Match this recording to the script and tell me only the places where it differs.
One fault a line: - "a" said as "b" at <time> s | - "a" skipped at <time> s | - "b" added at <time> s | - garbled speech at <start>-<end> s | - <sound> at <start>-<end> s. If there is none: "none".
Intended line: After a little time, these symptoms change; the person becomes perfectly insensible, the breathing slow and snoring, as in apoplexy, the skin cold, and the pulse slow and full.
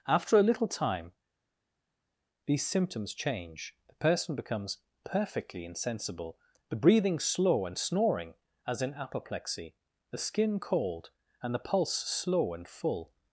none